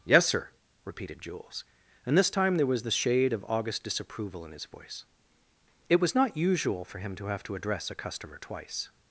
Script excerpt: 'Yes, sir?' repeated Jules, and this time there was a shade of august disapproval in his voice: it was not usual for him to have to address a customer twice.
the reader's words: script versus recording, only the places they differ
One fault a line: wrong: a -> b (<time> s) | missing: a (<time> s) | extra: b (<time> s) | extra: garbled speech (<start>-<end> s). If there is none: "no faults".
wrong: a -> the (2.8 s)